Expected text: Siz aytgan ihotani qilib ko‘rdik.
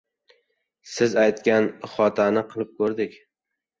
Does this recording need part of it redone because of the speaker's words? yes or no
no